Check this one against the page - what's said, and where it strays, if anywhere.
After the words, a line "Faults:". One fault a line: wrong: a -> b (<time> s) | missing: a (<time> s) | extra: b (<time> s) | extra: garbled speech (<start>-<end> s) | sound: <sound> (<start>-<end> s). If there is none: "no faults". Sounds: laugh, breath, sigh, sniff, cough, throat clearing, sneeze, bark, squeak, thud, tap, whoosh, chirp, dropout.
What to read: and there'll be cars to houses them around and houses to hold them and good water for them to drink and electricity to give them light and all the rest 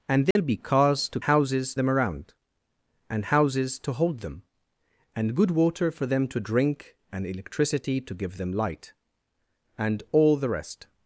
and there'll be cars to houses them around and houses to hold them and good water for them to drink and electricity to give them light and all the rest
Faults:
sound: dropout (0.3-0.4 s)